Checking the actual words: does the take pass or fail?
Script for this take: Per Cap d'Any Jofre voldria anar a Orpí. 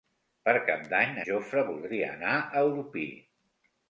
pass